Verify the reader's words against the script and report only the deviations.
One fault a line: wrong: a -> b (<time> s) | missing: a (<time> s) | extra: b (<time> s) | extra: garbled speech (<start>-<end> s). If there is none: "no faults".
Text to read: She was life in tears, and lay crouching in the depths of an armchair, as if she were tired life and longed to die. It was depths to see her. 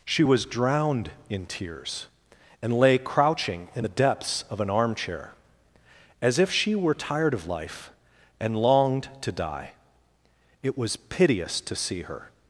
wrong: life -> drowned (0.5 s)
extra: of (7.3 s)
wrong: depths -> piteous (11.0 s)